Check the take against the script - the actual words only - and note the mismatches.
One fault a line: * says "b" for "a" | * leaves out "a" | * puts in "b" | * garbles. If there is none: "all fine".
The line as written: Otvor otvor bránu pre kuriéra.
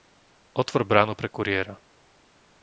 * leaves out "otvor"